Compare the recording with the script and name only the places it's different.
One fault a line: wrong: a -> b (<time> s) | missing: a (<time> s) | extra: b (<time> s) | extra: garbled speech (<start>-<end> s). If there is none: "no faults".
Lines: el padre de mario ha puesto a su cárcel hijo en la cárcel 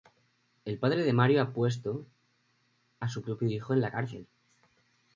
wrong: cárcel -> propio (3.2 s)